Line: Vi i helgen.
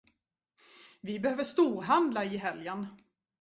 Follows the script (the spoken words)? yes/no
no